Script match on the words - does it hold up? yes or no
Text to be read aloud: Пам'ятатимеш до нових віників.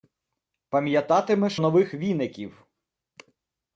no